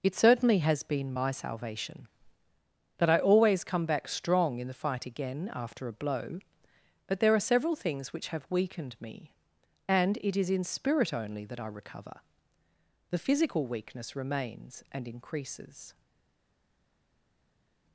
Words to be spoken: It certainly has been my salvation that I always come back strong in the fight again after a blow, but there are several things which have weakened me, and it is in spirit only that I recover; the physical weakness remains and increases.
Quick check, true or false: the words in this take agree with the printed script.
true